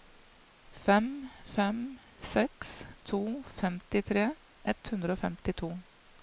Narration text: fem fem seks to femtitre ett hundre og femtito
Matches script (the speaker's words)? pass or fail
pass